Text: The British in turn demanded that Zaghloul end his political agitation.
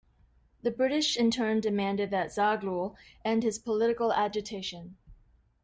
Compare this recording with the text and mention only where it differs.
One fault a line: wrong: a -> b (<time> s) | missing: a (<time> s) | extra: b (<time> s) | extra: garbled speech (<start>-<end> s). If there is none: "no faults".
no faults